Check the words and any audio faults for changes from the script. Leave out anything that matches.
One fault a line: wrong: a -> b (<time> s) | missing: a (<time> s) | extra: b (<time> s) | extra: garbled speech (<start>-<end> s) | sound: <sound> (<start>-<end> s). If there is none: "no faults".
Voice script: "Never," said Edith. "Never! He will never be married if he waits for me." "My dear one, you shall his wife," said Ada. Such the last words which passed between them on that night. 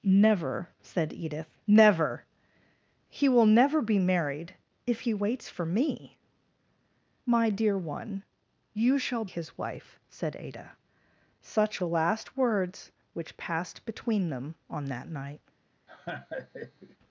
sound: laugh (15.9-17.0 s)